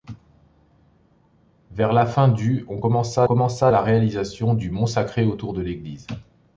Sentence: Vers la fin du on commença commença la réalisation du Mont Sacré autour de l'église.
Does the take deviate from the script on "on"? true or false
false